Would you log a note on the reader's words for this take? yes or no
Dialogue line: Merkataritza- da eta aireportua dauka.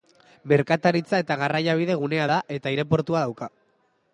yes